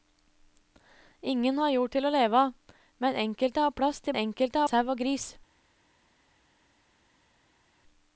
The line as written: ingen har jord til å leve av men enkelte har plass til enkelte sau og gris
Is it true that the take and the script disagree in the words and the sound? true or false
false